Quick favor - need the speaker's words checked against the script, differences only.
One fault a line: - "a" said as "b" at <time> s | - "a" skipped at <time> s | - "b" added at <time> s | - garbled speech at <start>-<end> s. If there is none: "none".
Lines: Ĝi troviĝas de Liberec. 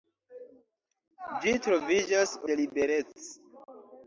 none